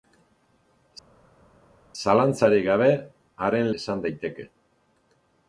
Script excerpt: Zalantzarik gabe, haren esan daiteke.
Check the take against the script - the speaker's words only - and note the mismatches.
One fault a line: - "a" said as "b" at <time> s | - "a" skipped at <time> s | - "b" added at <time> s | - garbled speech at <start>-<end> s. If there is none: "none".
none